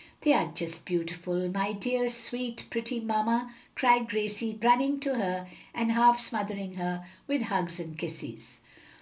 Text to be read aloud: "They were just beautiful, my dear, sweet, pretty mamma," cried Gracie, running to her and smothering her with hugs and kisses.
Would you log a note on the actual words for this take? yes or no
yes